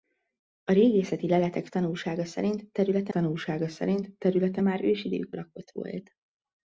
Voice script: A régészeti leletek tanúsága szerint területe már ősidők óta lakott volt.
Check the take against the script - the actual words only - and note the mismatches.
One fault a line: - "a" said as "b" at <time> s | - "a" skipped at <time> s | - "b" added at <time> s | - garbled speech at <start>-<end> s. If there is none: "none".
- "tanúsága szerint területe" added at 3.1 s
- "óta" skipped at 5.3 s